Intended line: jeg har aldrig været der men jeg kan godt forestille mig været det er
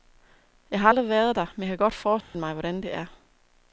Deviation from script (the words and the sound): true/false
true